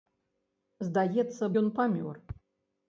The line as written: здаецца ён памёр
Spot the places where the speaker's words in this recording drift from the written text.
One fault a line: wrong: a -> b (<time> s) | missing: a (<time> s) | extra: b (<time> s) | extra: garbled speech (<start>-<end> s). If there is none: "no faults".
no faults